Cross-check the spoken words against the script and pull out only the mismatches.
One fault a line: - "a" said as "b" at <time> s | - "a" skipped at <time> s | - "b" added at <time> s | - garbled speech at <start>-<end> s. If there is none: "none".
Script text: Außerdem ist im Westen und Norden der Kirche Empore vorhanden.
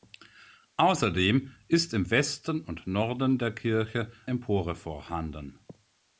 none